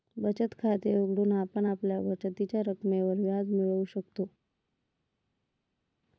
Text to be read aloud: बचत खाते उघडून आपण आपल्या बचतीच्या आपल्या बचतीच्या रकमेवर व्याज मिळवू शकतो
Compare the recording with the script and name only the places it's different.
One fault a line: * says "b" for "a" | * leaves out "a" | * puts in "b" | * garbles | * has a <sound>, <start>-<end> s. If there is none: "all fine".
* leaves out "आपल्या बचतीच्या"